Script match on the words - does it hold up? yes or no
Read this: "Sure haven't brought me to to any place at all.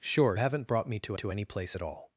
yes